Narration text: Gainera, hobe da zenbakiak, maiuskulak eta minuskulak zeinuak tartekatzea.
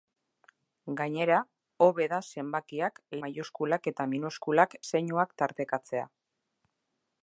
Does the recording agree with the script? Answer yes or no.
yes